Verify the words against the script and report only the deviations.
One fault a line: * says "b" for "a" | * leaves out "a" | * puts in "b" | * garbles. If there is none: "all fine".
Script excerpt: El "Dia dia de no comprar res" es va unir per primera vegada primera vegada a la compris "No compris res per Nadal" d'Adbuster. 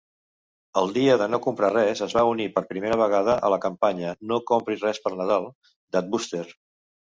* leaves out "dia"
* leaves out "primera vegada"
* says "campanya" for "compris"